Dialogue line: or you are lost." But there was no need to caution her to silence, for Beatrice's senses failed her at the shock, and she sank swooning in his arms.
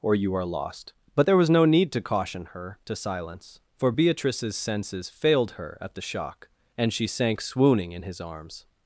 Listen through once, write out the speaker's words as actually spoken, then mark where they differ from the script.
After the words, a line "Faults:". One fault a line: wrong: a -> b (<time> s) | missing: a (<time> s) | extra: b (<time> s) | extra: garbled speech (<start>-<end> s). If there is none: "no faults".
or you are lost." But there was no need to caution her to silence, for Beatrice's senses failed her at the shock, and she sank swooning in his arms.
Faults:
no faults